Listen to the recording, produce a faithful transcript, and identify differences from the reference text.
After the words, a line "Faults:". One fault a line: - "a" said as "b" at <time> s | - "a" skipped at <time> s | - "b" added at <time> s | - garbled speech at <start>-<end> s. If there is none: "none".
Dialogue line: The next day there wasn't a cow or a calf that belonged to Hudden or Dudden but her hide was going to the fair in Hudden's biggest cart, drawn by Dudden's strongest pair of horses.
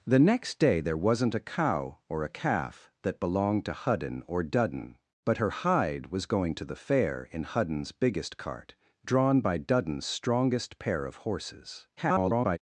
The next day there wasn't a cow or a calf that belonged to Hudden or Dudden but her hide was going to the fair in Hudden's biggest cart, drawn by Dudden's strongest pair of horses. [garbled]
Faults:
- garbled speech at 12.0-12.6 s